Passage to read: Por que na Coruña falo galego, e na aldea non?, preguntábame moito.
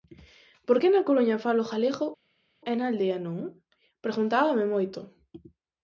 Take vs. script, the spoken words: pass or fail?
pass